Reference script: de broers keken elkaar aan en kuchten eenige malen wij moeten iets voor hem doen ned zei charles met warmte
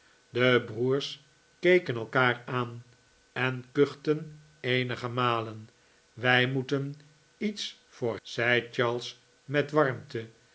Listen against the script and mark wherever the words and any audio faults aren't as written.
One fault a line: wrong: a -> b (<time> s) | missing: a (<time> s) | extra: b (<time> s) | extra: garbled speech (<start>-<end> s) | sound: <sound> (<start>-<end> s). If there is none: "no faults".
missing: hem doen ned (8.2 s)